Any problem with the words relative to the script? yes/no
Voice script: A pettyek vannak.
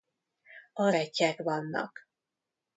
no